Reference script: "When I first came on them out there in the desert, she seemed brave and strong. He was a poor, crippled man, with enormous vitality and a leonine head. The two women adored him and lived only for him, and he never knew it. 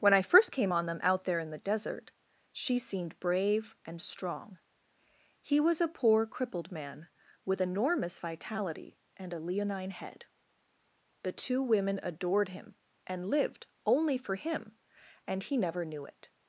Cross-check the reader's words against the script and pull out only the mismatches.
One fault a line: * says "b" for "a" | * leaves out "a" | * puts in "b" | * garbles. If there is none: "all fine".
all fine